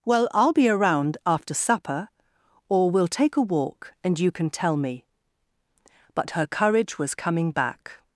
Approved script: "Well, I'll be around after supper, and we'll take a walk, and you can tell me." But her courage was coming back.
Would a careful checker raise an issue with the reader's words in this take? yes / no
yes